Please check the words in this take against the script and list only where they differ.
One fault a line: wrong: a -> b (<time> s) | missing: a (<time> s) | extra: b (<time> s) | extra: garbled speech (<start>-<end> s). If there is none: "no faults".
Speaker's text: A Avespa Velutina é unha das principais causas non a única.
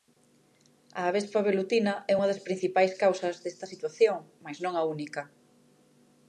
extra: desta situación mais (3.4 s)